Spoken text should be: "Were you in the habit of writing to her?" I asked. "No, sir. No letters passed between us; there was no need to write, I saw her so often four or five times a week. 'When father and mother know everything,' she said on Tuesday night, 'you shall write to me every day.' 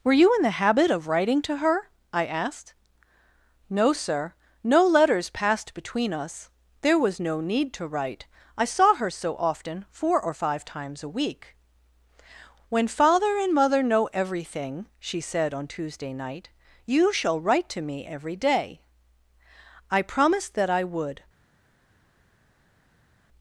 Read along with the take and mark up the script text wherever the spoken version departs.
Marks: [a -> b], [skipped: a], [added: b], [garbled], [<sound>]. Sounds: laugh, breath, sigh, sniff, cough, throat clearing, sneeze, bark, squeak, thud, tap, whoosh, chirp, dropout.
"Were you in the habit of writing to her?" I asked. "No, sir. No letters passed between us; there was no need to write, I saw her so often four or five times a week. 'When father and mother know everything,' she said on Tuesday night, 'you shall write to me every day.' [added: I promised that I would]